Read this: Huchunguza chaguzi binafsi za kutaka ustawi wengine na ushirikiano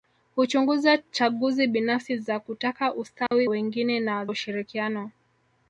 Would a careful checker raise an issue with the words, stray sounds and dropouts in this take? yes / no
yes